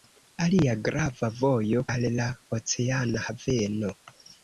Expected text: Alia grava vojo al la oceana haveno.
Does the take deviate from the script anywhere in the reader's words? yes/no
no